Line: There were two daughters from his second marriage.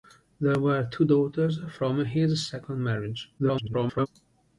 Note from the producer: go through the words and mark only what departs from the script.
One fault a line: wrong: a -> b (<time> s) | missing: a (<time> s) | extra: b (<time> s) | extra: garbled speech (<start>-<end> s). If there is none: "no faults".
extra: garbled speech (3.4-4.1 s)